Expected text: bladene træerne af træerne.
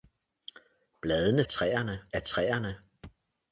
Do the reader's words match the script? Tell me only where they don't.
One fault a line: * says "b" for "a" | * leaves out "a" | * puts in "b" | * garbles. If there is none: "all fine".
all fine